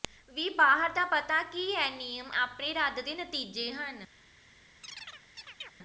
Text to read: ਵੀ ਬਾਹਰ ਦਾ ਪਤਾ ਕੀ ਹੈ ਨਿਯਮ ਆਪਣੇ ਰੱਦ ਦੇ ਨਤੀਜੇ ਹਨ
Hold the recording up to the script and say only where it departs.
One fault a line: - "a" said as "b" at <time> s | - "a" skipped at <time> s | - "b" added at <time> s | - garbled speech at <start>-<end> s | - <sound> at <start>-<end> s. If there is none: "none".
- chirp at 4.8-5.7 s